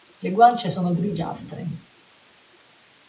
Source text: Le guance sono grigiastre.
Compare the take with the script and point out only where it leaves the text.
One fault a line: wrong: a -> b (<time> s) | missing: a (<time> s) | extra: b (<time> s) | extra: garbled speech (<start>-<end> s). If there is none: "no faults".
no faults